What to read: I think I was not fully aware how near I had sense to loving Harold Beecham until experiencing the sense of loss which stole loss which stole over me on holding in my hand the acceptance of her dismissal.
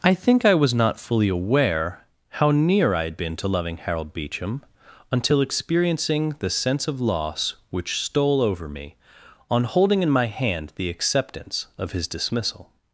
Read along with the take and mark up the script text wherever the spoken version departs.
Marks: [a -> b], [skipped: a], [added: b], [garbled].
I think I was not fully aware how near I had [sense -> been] to loving Harold Beecham until experiencing the sense of loss which stole [skipped: loss which stole] over me on holding in my hand the acceptance of [her -> his] dismissal.